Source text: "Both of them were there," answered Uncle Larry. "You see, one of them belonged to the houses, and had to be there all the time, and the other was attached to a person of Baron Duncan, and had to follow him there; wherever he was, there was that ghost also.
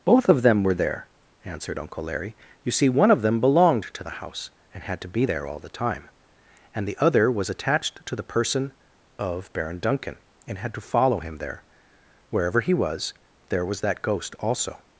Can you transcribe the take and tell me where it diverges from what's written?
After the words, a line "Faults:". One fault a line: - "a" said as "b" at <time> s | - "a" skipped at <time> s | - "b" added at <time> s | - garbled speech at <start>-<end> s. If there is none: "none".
"Both of them were there," answered Uncle Larry. "You see, one of them belonged to the house, and had to be there all the time, and the other was attached to the person of Baron Duncan, and had to follow him there; wherever he was, there was that ghost also.
Faults:
- "houses" said as "house" at 4.2 s
- "a" said as "the" at 8.1 s